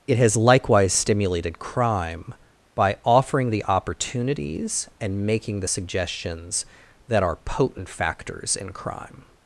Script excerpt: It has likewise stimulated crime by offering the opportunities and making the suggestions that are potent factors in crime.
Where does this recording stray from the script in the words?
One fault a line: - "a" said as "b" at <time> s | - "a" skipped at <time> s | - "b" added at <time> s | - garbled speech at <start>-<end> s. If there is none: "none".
none